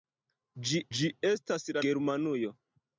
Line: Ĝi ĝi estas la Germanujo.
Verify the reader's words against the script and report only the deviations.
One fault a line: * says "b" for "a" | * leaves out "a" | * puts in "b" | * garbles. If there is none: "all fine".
all fine